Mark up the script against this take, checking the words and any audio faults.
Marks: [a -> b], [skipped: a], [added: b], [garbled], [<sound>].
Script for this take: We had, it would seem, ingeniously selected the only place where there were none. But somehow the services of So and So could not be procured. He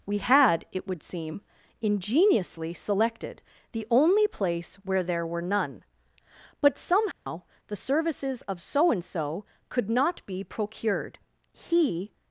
We had, it would seem, ingeniously selected the only place where there were none. But somehow [dropout] the services of So and So could not be procured. He